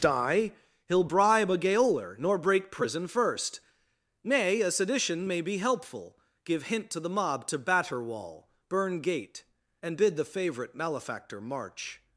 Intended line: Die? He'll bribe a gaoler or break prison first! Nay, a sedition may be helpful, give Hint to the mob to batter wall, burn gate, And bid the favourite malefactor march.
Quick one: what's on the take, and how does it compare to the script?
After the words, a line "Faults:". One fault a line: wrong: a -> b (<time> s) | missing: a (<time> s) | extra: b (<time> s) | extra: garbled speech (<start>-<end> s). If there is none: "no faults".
Die? He'll bribe a gaoler nor break prison first! Nay, a sedition may be helpful, give Hint to the mob to batter wall, burn gate, And bid the favourite malefactor march.
Faults:
wrong: or -> nor (2.2 s)